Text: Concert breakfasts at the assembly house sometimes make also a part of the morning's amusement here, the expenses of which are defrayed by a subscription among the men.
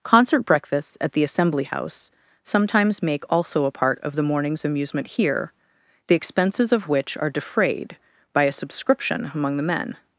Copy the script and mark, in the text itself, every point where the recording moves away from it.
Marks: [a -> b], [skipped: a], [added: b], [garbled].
Concert breakfasts at the assembly house sometimes make also a part of the morning's amusement here, the expenses of which are defrayed by a subscription among the men.